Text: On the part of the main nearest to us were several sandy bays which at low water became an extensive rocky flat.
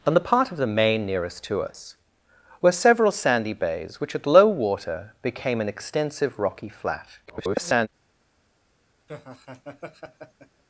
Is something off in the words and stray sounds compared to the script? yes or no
yes